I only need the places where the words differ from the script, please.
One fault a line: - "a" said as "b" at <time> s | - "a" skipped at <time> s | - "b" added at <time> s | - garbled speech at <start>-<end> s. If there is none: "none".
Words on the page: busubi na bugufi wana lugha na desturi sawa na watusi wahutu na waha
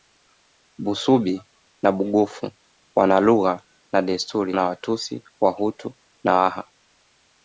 - "sawa" skipped at 4.5 s